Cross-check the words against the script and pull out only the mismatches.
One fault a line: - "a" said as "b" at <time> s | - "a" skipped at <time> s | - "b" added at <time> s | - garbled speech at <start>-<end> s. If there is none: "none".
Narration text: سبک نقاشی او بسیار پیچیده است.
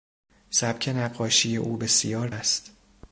- "پیچیده" skipped at 2.3 s